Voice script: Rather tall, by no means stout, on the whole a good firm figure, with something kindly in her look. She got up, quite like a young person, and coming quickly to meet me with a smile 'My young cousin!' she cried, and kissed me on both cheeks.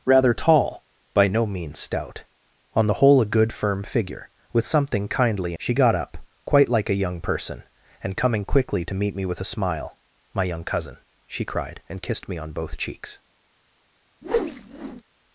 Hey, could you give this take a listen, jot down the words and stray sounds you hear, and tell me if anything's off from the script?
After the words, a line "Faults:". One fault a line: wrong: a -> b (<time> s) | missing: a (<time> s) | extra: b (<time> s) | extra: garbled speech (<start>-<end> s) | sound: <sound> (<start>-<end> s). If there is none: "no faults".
Rather tall, by no means stout, on the whole a good firm figure, with something kindly. She got up, quite like a young person, and coming quickly to meet me with a smile 'My young cousin!' she cried, and kissed me on both cheeks.
Faults:
missing: in her look (5.5 s)
sound: whoosh (14.2-15.0 s)